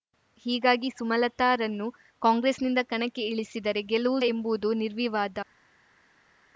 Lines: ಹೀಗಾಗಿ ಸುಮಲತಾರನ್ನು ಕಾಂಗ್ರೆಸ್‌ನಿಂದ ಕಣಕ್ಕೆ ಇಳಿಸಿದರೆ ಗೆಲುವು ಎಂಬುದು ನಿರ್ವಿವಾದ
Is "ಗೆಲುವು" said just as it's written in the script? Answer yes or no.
yes